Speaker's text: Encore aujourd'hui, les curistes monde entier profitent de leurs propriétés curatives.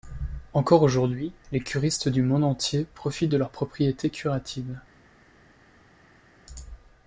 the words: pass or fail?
fail